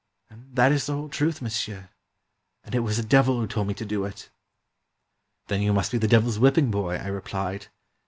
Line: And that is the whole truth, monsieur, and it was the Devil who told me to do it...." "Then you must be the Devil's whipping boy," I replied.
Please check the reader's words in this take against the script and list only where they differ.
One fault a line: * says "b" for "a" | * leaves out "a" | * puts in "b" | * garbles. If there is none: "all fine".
all fine